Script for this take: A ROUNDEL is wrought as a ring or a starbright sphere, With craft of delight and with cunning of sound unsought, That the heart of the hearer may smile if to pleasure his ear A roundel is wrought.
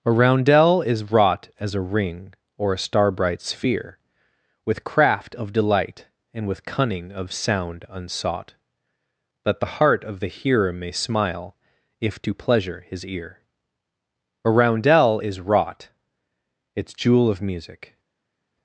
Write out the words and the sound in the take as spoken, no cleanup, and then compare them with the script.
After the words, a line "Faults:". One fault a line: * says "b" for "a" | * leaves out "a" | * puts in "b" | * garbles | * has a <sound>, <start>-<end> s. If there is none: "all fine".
A ROUNDEL is wrought as a ring or a starbright sphere, With craft of delight and with cunning of sound unsought, That the heart of the hearer may smile if to pleasure his ear A roundel is wrought. Its jewel of music
Faults:
* puts in "Its jewel of music"